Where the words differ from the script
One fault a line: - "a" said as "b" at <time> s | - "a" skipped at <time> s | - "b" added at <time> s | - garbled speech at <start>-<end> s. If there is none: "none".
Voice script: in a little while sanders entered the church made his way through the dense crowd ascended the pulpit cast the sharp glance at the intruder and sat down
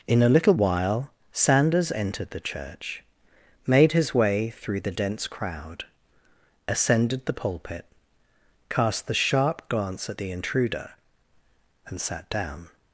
none